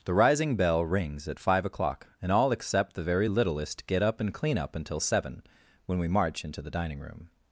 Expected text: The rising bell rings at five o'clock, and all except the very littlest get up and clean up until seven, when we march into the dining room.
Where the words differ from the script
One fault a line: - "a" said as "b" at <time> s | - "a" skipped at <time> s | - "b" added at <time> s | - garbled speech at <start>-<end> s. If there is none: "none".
none